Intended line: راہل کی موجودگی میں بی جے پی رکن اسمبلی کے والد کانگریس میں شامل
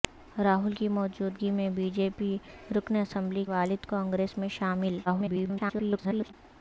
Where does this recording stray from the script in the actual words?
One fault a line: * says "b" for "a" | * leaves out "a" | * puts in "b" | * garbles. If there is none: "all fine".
* leaves out "کے"
* garbles